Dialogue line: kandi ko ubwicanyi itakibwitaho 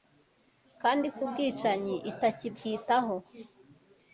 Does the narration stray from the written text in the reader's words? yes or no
no